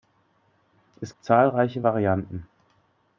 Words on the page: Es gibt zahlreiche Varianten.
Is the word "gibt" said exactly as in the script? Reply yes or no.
no